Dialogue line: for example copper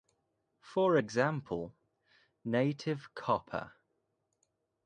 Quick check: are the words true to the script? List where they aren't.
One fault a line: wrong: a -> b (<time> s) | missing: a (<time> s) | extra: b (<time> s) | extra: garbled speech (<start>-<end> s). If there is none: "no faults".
extra: native (2.4 s)